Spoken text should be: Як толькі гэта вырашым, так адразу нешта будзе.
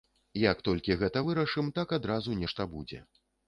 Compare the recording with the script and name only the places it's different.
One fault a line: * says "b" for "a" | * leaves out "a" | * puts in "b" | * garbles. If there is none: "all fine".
all fine